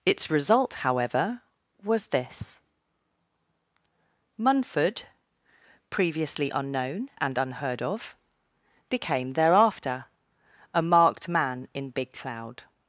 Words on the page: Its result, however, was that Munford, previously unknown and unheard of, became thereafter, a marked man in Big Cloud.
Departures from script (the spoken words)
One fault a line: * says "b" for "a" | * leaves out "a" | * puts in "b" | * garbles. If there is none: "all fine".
* says "this" for "that"